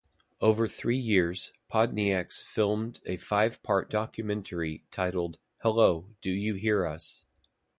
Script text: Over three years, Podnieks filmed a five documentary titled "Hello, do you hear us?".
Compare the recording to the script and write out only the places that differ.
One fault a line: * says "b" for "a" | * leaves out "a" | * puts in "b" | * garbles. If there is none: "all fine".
* puts in "part"